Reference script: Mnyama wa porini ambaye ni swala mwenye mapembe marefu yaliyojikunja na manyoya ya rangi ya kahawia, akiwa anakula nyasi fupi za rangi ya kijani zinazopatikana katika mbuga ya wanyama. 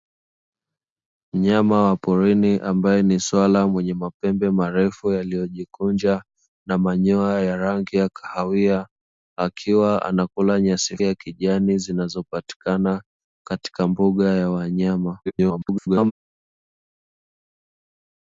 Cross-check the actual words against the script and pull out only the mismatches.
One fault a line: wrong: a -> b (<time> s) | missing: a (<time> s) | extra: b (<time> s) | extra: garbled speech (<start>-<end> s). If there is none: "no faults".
missing: fupi za rangi (11.0 s)
extra: garbled speech (15.3-16.1 s)